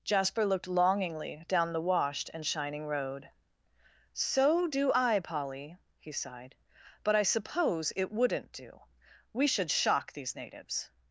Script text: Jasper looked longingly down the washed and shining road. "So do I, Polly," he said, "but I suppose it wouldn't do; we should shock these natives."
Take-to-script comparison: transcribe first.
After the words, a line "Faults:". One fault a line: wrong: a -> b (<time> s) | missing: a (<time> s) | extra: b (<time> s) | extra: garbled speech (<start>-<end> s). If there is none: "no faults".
Jasper looked longingly down the washed and shining road. "So do I, Polly," he sighed, "but I suppose it wouldn't do; we should shock these natives."
Faults:
wrong: said -> sighed (6.1 s)